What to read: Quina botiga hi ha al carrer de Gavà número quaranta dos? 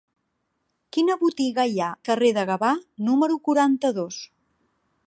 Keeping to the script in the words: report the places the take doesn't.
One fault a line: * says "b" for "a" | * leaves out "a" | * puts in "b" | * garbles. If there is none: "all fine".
* leaves out "al"